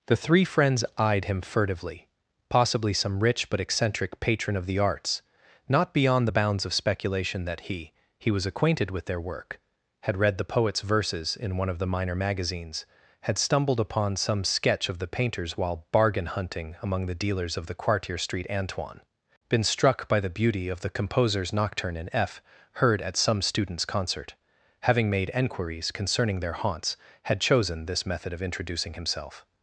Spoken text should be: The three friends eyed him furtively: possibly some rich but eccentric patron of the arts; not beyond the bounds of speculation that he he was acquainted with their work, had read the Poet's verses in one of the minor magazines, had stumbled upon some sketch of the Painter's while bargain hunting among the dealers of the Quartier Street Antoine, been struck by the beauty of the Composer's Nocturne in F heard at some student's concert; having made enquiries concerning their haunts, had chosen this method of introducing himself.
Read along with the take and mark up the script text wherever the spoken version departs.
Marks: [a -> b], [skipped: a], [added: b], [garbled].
The three friends eyed him furtively: possibly some rich but eccentric patron of the arts; not beyond the bounds of speculation that he he was acquainted with their work, had read the Poet's verses in one of the minor magazines, had stumbled upon some sketch of the Painter's while bargain hunting among the dealers of the Quartier Street Antoine, been struck by the beauty of the Composer's Nocturne in F heard at some student's concert; having made enquiries concerning their haunts, had chosen this method of introducing himself.